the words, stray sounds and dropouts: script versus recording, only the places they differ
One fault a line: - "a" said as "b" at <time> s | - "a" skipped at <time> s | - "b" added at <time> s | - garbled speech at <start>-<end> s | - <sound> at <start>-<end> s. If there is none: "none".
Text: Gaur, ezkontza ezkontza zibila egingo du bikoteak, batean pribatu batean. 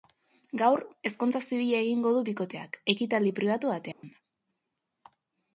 - "ezkontza" skipped at 1.4 s
- "batean" said as "ekitaldi" at 2.9 s
- dropout at 3.9-4.0 s